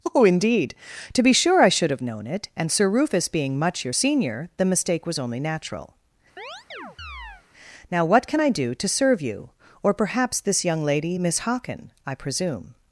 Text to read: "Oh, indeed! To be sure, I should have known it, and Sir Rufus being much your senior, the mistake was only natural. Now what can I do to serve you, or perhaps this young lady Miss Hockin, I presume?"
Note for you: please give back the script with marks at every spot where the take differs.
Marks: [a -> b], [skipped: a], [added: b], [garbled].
"Oh, indeed! To be sure, I should have known it, and Sir Rufus being much your senior, the mistake was only natural. Now what can I do to serve you, or perhaps this young lady Miss Hockin, I presume?"